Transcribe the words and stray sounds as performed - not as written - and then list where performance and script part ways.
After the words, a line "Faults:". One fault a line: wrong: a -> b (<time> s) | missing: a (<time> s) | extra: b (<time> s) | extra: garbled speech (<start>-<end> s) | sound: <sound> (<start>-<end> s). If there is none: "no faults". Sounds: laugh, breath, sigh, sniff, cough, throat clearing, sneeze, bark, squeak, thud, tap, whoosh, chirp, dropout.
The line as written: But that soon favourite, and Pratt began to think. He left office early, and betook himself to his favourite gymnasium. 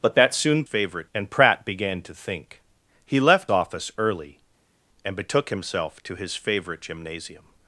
But that soon favourite, and Pratt began to think. He left office early, and betook himself to his favourite gymnasium.
Faults:
no faults